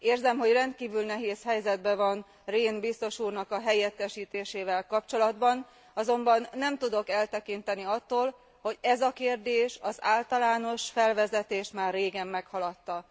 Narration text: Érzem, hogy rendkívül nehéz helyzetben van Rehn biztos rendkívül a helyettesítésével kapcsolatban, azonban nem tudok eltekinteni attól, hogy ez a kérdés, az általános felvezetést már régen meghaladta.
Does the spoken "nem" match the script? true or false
true